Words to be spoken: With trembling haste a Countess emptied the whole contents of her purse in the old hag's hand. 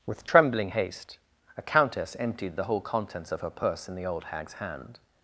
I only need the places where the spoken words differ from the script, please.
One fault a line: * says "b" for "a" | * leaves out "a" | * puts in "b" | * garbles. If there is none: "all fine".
all fine